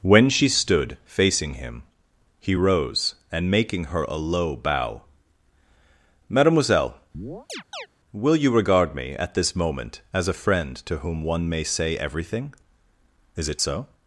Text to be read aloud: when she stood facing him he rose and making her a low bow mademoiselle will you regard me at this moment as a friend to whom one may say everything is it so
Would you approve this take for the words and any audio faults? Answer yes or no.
no